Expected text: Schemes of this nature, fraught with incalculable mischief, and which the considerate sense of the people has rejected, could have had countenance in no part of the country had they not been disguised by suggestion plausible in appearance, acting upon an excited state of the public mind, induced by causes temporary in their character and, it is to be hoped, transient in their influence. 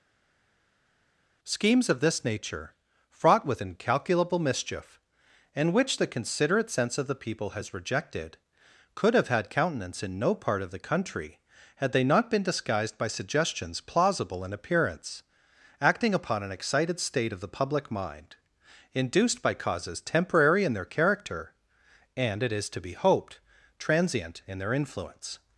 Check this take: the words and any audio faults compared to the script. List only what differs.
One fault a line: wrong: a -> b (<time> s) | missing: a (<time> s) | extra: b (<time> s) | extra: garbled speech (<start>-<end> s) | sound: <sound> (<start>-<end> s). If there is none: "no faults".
wrong: suggestion -> suggestions (13.1 s)